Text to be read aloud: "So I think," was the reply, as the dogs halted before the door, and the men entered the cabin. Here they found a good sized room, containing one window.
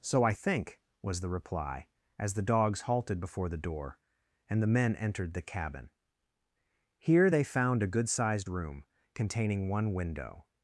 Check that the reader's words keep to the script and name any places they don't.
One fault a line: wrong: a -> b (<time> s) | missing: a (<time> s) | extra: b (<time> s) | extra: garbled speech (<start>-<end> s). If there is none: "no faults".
no faults